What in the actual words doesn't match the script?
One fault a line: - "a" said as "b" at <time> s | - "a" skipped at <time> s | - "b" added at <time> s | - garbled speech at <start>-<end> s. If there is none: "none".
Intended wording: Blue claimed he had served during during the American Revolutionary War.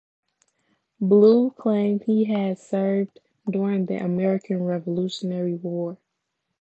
- "during" skipped at 3.9 s